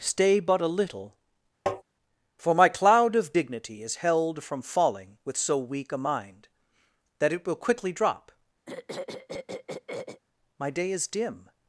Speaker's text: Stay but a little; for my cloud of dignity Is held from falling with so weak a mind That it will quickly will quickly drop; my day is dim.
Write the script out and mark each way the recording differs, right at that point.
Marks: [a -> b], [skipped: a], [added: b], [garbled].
Stay but a little; for my cloud of dignity Is held from falling with so weak a mind That it will quickly [skipped: will quickly] drop; my day is dim.